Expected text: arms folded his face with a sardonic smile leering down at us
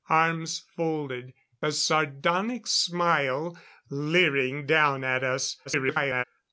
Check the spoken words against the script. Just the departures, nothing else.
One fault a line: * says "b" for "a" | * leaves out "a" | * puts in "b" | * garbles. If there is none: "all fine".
* leaves out "his face with"
* garbles